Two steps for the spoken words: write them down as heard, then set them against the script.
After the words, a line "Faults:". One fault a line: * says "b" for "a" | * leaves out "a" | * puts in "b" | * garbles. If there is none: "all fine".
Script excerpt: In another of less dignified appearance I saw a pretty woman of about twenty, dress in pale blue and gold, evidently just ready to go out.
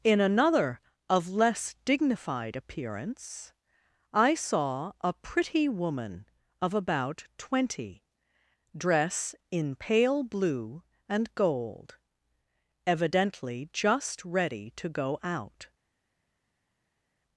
In another of less dignified appearance I saw a pretty woman of about twenty, dress in pale blue and gold, evidently just ready to go out.
Faults:
all fine